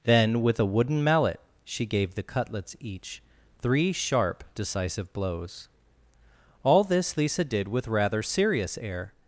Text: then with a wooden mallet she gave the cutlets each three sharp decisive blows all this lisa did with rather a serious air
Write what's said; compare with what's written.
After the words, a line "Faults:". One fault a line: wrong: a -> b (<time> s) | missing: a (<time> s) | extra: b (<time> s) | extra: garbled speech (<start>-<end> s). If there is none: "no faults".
then with a wooden mallet she gave the cutlets each three sharp decisive blows all this lisa did with rather serious air
Faults:
missing: a (8.2 s)